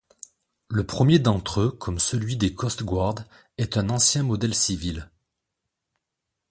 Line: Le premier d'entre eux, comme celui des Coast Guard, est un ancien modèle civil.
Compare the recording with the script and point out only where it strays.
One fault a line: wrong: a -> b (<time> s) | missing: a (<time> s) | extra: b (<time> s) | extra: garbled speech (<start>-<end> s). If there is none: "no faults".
no faults